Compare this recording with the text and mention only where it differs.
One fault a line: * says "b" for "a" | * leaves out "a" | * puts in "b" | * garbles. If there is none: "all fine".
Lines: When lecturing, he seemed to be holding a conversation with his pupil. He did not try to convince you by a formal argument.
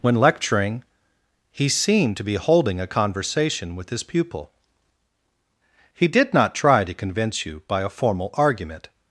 all fine